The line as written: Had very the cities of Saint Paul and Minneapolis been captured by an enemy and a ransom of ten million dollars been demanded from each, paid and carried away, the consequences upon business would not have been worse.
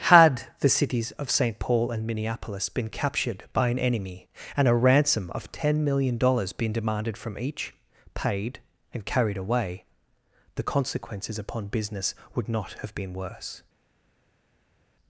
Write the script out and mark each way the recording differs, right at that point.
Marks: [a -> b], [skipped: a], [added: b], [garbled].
Had [skipped: very] the cities of Saint Paul and Minneapolis been captured by an enemy and a ransom of ten million dollars been demanded from each, paid and carried away, the consequences upon business would not have been worse.